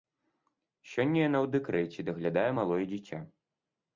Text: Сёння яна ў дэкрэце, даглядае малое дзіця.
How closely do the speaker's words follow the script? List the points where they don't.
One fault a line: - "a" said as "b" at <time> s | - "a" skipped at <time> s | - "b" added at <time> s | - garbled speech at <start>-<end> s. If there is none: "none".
none